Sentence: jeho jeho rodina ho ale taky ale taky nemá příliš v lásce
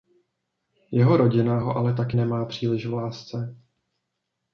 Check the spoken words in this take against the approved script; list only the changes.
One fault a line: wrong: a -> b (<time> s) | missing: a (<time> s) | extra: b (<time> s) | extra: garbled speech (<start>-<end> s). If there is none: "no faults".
missing: jeho (1.2 s)
missing: ale taky (2.2 s)